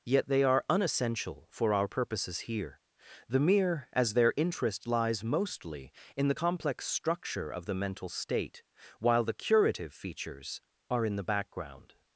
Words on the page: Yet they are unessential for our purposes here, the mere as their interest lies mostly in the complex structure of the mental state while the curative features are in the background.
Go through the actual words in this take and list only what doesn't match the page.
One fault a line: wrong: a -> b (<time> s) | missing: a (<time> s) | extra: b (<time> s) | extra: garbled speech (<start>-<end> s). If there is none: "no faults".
no faults